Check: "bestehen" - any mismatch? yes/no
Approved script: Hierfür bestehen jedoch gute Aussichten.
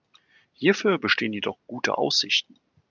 no